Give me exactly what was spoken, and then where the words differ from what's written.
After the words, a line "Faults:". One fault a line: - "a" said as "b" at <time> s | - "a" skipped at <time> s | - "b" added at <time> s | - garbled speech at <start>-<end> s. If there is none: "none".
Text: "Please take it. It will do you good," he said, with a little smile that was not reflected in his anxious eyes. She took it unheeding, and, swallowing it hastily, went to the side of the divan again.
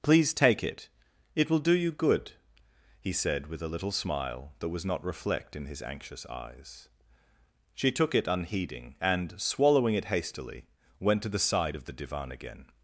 "Please take it. It will do you good," he said, with a little smile that was not reflect in his anxious eyes. She took it unheeding, and, swallowing it hastily, went to the side of the divan again.
Faults:
- "reflected" said as "reflect" at 5.0 s